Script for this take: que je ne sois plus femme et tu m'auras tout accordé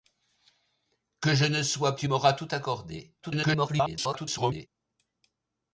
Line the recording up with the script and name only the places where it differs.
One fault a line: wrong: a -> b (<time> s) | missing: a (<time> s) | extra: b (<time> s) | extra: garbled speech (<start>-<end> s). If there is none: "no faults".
missing: plus femme et (1.9 s)
extra: garbled speech (3.2-4.7 s)